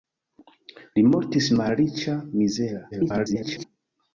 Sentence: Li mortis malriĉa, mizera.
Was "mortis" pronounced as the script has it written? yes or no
yes